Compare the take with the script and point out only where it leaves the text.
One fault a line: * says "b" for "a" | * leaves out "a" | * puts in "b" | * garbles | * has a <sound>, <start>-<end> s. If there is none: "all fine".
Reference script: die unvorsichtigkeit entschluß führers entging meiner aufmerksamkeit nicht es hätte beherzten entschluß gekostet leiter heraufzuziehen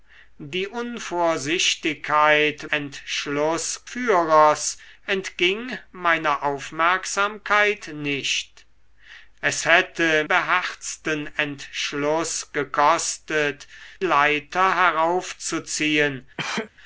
* has a sneeze, 16.4-16.7 s